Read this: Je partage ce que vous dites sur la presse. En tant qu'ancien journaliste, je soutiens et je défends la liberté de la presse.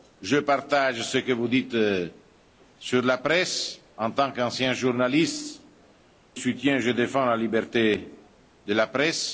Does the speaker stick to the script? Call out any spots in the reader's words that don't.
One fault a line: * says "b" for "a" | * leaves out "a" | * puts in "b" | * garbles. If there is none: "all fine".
* leaves out "je"